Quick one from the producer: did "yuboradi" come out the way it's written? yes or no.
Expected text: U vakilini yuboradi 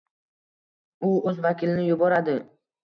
yes